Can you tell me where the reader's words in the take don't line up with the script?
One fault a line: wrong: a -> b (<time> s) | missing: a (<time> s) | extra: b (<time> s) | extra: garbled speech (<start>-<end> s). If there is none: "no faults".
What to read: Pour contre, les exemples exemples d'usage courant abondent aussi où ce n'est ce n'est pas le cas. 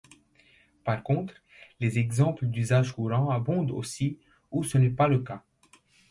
wrong: Pour -> Par (0.8 s)
missing: exemples (2.5 s)
missing: ce n'est (4.9 s)